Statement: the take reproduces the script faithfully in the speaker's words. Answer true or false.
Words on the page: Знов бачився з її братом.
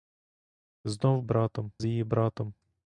false